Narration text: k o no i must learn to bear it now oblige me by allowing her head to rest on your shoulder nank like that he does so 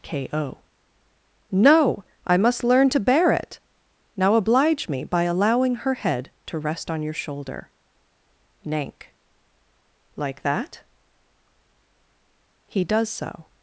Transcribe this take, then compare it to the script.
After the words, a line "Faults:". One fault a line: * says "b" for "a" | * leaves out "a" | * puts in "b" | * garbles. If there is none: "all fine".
k o no i must learn to bear it now oblige me by allowing her head to rest on your shoulder nank like that he does so
Faults:
all fine